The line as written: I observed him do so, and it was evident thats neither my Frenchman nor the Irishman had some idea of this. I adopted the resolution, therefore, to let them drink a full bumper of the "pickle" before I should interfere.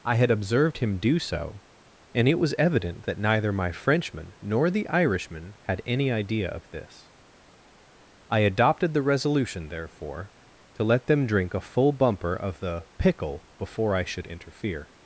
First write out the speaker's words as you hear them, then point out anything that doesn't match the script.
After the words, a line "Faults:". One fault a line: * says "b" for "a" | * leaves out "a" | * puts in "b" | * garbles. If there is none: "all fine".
I had observed him do so, and it was evident that neither my Frenchman nor the Irishman had any idea of this. I adopted the resolution, therefore, to let them drink a full bumper of the "pickle" before I should interfere.
Faults:
* puts in "had"
* says "that" for "thats"
* says "any" for "some"